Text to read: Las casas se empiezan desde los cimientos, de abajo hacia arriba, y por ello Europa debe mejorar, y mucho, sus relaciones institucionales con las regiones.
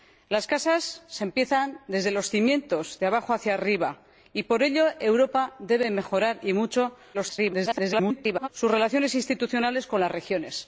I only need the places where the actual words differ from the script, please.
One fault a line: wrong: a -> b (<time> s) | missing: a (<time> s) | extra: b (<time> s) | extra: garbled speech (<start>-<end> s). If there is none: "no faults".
extra: garbled speech (7.1-8.5 s)